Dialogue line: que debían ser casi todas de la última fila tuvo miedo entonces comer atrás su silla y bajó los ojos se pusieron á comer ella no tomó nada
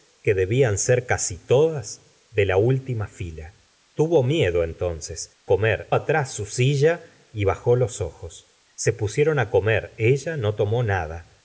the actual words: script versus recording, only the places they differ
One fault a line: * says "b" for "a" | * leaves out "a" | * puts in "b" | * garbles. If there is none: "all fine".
all fine